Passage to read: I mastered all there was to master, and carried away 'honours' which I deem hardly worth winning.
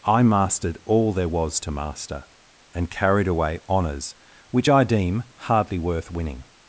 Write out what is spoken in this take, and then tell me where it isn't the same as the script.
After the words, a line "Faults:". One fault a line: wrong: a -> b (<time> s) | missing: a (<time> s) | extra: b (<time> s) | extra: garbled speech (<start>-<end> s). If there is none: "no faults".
I mastered all there was to master, and carried away 'honours' which I deem hardly worth winning.
Faults:
no faults